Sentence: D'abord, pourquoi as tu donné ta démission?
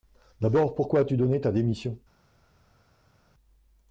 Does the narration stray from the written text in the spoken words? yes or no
no